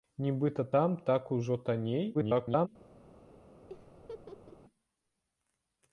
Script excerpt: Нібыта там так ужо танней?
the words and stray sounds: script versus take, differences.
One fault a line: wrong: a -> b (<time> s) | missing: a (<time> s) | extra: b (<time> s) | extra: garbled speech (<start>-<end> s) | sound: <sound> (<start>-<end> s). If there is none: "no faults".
extra: garbled speech (2.1-2.7 s)
sound: laugh (3.7-4.6 s)